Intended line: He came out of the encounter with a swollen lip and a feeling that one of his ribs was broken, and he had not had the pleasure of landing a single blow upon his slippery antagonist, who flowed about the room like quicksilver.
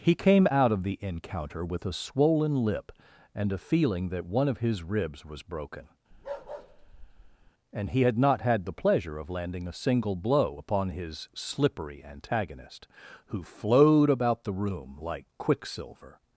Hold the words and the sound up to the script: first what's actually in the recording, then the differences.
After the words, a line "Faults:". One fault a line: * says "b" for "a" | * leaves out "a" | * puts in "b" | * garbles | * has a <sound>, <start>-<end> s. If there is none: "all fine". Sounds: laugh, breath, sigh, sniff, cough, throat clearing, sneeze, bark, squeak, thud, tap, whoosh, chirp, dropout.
He came out of the encounter with a swollen lip and a feeling that one of his ribs was broken, and he had not had the pleasure of landing a single blow upon his slippery antagonist, who flowed about the room like quicksilver.
Faults:
* has a bark, 6.1-7.5 s